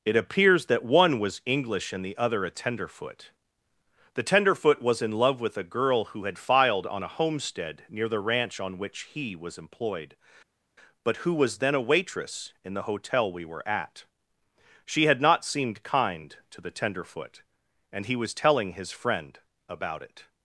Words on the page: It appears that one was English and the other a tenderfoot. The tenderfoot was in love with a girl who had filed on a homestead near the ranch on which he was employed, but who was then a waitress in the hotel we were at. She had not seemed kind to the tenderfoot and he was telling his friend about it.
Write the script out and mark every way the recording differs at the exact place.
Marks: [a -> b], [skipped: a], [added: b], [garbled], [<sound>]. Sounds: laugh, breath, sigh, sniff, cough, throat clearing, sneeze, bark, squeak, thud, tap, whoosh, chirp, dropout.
It appears that one was English and the other a tenderfoot. The tenderfoot was in love with a girl who had filed on a homestead near the ranch on which he was employed, but who was then a waitress in the hotel we were at. She had not seemed kind to the tenderfoot and he was telling his friend about it.